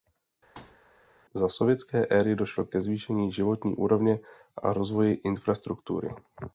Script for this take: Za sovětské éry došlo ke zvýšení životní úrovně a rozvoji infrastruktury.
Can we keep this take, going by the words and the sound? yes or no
no